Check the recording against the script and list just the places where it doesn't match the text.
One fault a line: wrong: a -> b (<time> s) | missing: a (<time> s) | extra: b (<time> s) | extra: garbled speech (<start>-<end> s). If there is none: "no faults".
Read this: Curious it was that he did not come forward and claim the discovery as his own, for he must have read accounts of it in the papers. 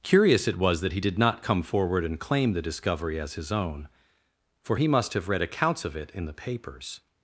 no faults